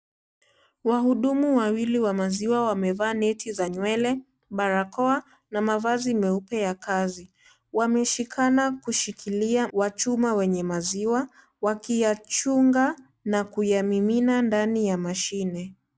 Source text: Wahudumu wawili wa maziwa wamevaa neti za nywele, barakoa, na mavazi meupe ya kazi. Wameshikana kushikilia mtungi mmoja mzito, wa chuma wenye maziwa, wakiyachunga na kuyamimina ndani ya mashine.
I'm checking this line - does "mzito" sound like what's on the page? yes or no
no